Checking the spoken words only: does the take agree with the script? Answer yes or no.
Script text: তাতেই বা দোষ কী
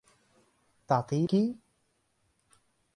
no